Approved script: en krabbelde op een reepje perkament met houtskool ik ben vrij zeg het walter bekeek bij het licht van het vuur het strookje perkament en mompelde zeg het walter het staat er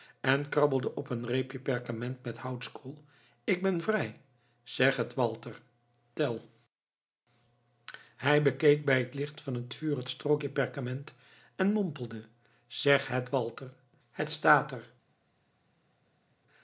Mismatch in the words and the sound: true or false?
true